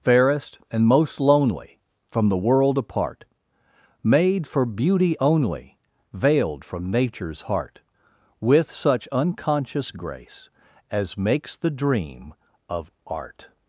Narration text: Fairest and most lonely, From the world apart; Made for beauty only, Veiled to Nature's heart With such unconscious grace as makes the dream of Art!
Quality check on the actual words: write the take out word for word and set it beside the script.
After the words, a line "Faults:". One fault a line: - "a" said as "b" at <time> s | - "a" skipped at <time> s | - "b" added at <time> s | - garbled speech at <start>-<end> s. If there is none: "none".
Fairest and most lonely, From the world apart; Made for beauty only, Veiled from Nature's heart With such unconscious grace as makes the dream of Art!
Faults:
- "to" said as "from" at 6.6 s